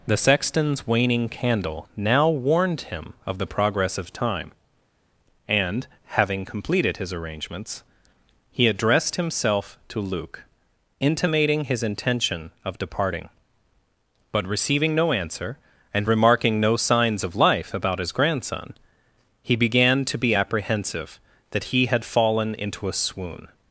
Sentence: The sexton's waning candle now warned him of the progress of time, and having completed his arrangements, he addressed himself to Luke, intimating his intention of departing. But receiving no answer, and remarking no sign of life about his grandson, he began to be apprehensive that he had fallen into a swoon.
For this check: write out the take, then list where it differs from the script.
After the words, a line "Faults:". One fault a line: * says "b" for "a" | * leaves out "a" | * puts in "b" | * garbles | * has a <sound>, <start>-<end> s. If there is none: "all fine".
The sexton's waning candle now warned him of the progress of time, and having completed his arrangements, he addressed himself to Luke, intimating his intention of departing. But receiving no answer, and remarking no signs of life about his grandson, he began to be apprehensive that he had fallen into a swoon.
Faults:
* says "signs" for "sign"